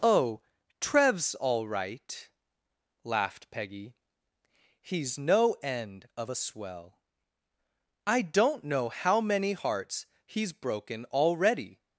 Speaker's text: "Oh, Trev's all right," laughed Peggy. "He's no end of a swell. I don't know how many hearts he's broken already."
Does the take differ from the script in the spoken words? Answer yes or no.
no